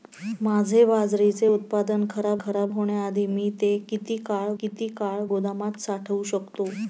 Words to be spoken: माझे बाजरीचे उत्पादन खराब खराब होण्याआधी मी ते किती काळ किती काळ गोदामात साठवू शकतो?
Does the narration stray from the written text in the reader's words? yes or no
no